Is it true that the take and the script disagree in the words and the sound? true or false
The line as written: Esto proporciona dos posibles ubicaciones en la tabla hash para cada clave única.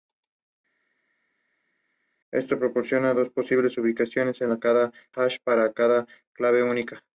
true